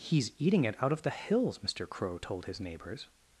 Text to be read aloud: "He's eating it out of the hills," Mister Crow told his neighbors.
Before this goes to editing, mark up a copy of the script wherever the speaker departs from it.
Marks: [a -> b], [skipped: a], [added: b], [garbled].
"He's eating it out of the hills," Mister Crow told his neighbors.